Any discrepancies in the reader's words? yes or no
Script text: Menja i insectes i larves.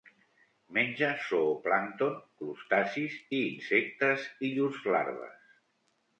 yes